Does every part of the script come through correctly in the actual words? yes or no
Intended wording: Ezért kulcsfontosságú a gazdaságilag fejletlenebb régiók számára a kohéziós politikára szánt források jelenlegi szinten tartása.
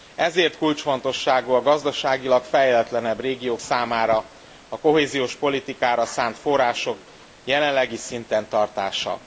yes